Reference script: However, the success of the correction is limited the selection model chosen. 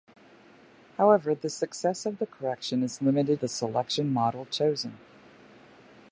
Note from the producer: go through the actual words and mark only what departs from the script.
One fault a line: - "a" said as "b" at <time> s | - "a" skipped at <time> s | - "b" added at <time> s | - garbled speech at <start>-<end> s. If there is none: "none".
none